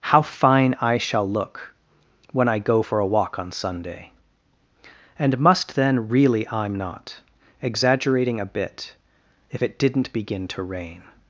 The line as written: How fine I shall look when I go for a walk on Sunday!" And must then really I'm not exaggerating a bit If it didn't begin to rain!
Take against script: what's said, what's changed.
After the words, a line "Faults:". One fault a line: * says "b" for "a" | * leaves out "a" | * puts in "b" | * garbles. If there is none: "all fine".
How fine I shall look when I go for a walk on Sunday!" And must then really I'm not exaggerating a bit If it didn't begin to rain!
Faults:
all fine